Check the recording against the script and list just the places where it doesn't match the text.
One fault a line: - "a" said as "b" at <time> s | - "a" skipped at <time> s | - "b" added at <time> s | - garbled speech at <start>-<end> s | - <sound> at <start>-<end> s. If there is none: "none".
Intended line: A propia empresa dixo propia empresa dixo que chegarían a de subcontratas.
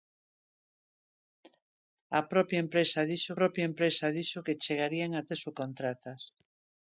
none